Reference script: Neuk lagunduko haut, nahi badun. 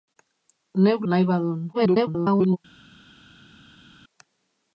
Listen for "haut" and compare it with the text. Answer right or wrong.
wrong